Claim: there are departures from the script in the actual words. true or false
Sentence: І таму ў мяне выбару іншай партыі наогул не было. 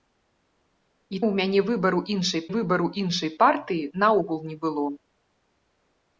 true